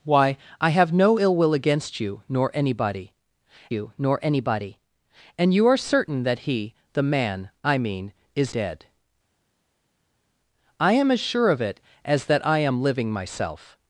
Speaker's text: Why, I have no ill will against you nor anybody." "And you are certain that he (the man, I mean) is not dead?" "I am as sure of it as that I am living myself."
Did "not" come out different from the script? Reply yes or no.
yes